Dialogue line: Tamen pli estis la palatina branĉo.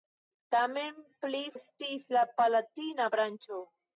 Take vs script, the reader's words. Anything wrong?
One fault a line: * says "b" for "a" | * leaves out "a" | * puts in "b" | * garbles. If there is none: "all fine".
all fine